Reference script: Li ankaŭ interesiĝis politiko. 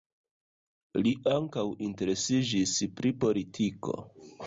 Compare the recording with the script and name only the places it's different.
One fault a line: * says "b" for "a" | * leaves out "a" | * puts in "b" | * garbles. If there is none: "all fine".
* puts in "pri"